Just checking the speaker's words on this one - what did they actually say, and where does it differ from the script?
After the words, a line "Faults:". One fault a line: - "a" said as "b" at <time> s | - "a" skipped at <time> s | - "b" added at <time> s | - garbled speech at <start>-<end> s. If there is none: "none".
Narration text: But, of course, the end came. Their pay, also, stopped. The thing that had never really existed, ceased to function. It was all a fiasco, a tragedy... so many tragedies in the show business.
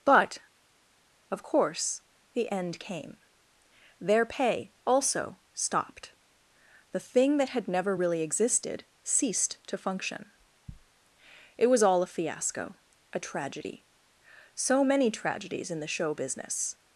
But, of course, the end came. Their pay, also, stopped. The thing that had never really existed, ceased to function. It was all a fiasco, a tragedy... so many tragedies in the show business.
Faults:
none